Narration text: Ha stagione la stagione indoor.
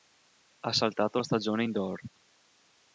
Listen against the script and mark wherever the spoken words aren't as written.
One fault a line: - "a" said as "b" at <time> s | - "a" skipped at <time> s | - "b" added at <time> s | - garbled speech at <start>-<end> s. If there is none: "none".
- "stagione" said as "saltato" at 0.7 s